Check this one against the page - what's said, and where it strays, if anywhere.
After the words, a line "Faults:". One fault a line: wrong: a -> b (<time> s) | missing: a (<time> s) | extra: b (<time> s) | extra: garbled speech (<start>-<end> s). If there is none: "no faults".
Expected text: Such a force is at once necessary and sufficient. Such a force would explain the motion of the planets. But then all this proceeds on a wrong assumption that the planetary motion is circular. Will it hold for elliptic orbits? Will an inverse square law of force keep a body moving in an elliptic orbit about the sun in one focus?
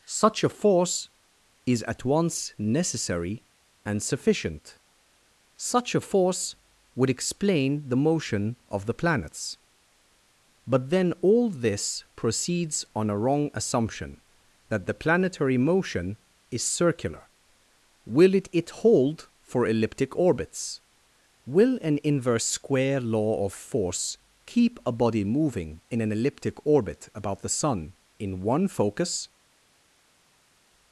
Such a force is at once necessary and sufficient. Such a force would explain the motion of the planets. But then all this proceeds on a wrong assumption that the planetary motion is circular. Will it it hold for elliptic orbits? Will an inverse square law of force keep a body moving in an elliptic orbit about the sun in one focus?
Faults:
extra: it (18.5 s)